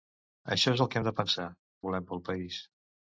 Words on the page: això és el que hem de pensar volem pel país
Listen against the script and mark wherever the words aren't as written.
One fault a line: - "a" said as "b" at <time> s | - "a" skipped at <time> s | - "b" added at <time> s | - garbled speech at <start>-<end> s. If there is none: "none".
none